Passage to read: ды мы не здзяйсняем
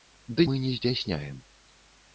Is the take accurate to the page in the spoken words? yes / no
yes